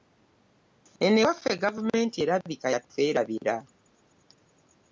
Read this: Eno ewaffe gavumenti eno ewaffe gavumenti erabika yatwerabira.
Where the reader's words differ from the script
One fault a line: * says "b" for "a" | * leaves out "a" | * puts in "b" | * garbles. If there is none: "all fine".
* leaves out "eno ewaffe gavumenti"